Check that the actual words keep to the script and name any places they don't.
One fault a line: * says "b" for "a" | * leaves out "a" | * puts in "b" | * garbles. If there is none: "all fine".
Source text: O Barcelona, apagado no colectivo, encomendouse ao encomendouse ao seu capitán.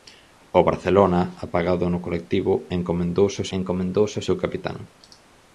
all fine